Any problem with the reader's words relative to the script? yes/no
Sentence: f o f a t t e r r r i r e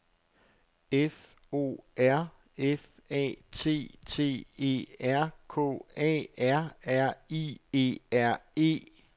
yes